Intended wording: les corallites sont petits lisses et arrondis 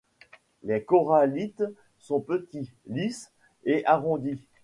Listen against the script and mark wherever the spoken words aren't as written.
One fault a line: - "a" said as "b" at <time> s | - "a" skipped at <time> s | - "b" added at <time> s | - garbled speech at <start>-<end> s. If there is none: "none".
none